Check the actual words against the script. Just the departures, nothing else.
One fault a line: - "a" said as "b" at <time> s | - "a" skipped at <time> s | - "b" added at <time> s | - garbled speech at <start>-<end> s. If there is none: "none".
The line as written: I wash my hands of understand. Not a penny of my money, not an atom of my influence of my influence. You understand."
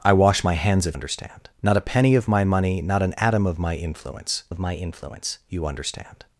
none